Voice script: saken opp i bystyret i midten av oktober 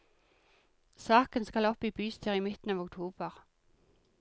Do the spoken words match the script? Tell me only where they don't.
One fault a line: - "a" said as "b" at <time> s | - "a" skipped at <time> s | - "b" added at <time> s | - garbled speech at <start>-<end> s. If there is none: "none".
- "skal" added at 1.4 s